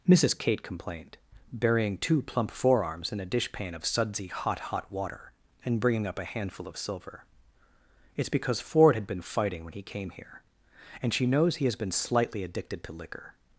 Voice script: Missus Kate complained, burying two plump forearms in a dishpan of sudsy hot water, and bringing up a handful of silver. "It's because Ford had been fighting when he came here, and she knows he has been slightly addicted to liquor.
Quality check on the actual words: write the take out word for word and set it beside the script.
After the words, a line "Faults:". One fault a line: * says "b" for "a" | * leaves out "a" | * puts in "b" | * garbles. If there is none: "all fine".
Missus Kate complained, burying two plump forearms in a dishpan of sudsy hot hot water, and bringing up a handful of silver. "It's because Ford had been fighting when he came here, and she knows he has been slightly addicted to liquor.
Faults:
* puts in "hot"